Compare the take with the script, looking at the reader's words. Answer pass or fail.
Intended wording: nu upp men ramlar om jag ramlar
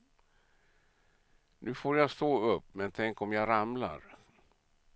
fail